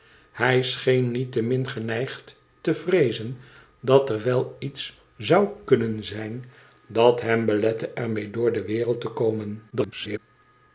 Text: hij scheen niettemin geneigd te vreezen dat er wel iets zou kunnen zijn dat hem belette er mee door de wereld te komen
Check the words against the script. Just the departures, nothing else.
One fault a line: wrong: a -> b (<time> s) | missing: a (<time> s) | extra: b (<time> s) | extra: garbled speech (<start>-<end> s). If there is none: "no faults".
extra: garbled speech (9.7-10.2 s)